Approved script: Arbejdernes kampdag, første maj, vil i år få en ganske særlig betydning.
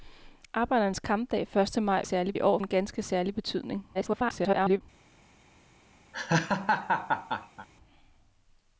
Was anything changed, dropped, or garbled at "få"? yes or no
yes